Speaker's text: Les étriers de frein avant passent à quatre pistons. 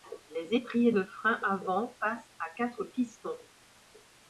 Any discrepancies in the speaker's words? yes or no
no